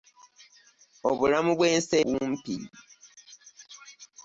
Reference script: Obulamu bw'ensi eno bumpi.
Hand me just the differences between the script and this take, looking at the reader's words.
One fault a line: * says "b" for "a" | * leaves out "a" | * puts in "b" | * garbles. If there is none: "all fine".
* leaves out "eno"